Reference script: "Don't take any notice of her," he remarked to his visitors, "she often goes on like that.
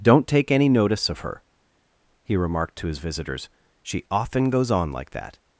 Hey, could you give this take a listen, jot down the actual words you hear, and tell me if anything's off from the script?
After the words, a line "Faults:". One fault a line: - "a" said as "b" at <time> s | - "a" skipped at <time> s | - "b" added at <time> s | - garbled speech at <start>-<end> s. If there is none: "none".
"Don't take any notice of her," he remarked to his visitors, "she often goes on like that.
Faults:
none